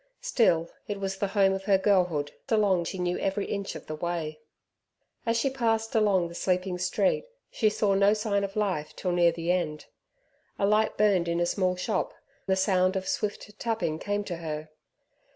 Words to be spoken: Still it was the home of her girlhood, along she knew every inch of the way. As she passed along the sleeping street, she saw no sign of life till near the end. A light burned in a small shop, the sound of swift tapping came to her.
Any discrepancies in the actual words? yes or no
no